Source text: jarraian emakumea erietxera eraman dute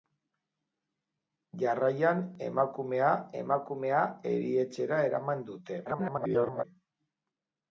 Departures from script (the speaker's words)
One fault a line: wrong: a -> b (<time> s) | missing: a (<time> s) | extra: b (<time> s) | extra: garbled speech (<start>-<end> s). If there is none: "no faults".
extra: emakumea (3.4 s)
extra: garbled speech (5.9-6.6 s)